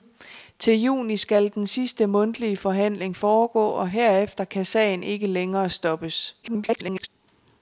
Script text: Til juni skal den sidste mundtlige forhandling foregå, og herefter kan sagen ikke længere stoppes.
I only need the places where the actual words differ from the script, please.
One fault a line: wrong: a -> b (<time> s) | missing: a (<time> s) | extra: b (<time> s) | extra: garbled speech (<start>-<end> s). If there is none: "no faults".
extra: garbled speech (6.4-7.1 s)